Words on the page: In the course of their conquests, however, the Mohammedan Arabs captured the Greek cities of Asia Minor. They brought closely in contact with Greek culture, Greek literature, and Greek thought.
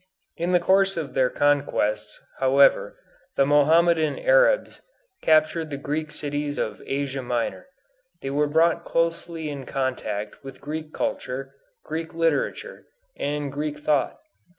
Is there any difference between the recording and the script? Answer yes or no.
yes